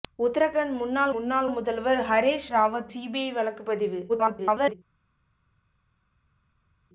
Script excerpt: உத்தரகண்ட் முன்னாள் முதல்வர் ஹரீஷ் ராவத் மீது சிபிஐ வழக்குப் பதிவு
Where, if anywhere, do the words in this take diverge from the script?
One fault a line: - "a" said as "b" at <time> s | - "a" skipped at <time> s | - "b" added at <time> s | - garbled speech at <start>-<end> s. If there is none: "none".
- "முன்னாள்" added at 1.1 s
- "மீது" skipped at 2.9 s
- garbled speech at 4.1-4.7 s